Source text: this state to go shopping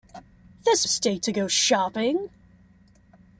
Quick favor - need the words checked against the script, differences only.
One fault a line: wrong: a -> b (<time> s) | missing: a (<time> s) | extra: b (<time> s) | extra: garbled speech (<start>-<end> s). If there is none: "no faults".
no faults